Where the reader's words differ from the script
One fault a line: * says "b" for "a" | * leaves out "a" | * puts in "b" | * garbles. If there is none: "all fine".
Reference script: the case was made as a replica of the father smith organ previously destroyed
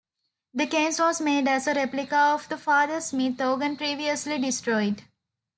all fine